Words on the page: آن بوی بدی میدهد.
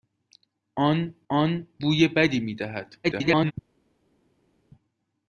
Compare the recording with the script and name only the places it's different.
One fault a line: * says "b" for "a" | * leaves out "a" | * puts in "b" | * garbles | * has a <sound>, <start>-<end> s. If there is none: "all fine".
* puts in "آن"
* garbles